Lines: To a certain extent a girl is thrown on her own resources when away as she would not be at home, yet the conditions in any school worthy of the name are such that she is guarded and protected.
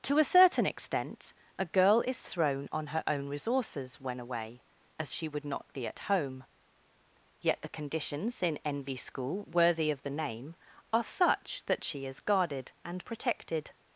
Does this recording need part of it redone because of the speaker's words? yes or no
yes